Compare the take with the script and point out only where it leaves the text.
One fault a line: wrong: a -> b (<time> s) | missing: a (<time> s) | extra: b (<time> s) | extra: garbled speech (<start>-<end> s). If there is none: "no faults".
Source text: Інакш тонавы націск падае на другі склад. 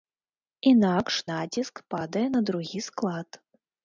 missing: тонавы (1.2 s)